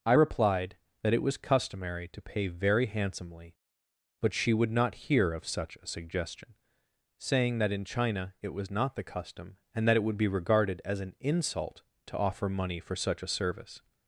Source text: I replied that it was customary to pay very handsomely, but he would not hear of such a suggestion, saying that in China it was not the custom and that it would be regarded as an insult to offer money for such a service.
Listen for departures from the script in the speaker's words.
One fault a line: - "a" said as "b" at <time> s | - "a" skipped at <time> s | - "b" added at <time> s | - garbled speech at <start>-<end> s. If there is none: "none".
- "he" said as "she" at 4.3 s